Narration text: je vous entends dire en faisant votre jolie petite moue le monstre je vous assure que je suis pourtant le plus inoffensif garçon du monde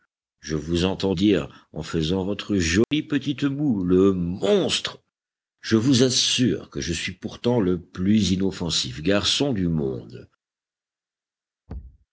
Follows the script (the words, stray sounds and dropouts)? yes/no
no